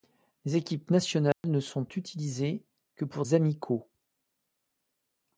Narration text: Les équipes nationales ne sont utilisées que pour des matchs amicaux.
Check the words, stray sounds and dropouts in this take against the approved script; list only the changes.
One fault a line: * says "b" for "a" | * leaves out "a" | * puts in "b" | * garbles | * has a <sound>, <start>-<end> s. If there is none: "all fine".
* has a dropout, 1.3-1.4 s
* leaves out "des matchs"